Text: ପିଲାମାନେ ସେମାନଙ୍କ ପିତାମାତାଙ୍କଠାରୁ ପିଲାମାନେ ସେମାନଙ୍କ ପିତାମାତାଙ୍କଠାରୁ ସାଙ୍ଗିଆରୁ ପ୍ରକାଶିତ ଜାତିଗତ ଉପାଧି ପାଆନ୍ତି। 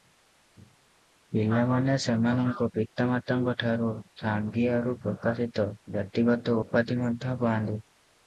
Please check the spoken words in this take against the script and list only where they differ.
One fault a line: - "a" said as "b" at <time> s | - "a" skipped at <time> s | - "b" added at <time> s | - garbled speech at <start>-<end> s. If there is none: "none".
- "ପିଲାମାନେ ସେମାନଙ୍କ ପିତାମାତାଙ୍କଠାରୁ" skipped at 3.9 s
- "ମଧ୍ୟ" added at 7.0 s